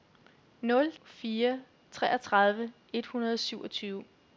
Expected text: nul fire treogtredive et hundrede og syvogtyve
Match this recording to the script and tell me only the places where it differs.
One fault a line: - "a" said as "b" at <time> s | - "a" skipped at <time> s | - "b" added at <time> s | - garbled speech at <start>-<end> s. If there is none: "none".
none